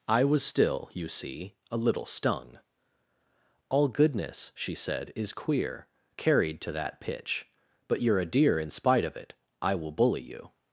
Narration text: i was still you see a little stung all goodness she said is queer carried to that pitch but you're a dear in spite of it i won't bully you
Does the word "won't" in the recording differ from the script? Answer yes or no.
yes